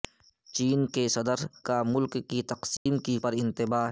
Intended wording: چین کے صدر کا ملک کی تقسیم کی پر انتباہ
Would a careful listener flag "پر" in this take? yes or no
no